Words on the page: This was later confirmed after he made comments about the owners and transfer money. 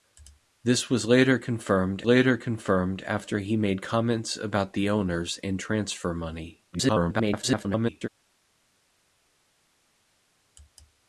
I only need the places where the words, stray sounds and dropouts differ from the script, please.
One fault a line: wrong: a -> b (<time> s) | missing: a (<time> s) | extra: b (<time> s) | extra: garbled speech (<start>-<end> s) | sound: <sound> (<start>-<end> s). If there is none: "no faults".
extra: later confirmed (2.0 s)
extra: garbled speech (6.7-8.1 s)